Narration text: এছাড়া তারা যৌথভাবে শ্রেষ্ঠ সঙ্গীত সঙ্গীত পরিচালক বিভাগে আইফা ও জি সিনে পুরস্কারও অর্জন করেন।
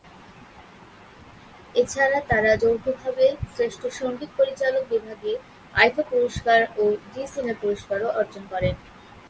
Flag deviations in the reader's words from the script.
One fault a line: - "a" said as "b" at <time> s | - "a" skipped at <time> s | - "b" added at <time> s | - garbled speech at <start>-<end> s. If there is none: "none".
- "সঙ্গীত" skipped at 4.3 s
- "পুরস্কার" added at 6.1 s